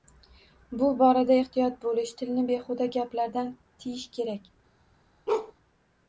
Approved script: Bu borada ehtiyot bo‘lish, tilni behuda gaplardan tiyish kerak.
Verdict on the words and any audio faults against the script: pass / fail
fail